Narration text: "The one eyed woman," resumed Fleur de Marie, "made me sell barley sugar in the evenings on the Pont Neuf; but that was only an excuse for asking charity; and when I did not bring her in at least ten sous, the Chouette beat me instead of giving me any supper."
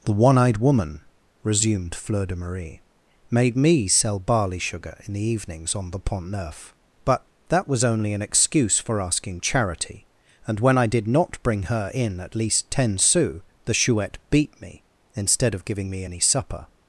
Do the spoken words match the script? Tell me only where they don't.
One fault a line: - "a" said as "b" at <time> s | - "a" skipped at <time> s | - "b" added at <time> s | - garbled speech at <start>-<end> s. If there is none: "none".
none